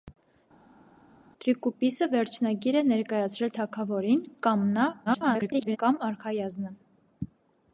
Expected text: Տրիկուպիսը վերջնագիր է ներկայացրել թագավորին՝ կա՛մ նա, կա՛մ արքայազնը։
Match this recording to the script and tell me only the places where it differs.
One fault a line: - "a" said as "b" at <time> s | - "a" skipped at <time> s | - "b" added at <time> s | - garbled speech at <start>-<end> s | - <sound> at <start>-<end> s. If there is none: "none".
- garbled speech at 5.1-5.8 s